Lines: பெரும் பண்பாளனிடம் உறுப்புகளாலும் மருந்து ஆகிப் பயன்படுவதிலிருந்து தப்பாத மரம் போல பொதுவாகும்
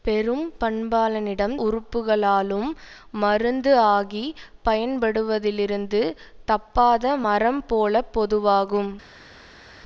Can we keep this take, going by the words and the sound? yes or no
yes